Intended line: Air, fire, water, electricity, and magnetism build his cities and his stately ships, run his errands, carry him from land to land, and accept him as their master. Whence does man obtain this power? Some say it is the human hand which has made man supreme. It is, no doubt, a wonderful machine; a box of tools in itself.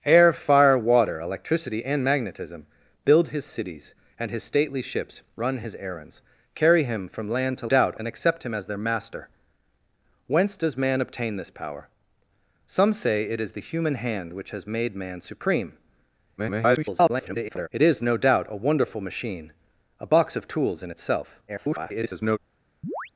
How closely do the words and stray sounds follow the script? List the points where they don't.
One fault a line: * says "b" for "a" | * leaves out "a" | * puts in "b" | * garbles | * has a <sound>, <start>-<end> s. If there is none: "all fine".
* says "doubt" for "land"
* garbles
* garbles
* has a chirp, 22.8-23.1 s